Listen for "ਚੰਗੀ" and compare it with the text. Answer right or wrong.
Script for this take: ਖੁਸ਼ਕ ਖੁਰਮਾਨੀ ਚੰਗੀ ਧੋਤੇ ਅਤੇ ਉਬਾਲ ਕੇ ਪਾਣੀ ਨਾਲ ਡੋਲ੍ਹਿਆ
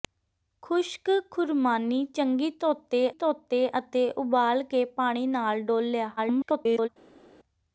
right